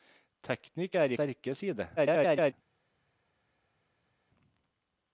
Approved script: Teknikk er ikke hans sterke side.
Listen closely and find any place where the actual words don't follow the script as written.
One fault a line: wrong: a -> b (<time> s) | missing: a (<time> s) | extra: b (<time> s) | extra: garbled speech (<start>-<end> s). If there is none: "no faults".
missing: ikke hans (1.1 s)
extra: garbled speech (2.0-2.5 s)